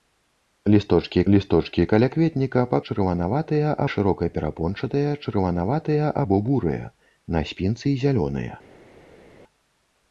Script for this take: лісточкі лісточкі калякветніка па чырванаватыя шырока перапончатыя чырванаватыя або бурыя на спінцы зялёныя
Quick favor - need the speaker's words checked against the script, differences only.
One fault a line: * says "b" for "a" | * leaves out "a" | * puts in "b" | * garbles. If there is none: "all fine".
all fine